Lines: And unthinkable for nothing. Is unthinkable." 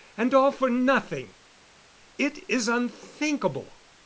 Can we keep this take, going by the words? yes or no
no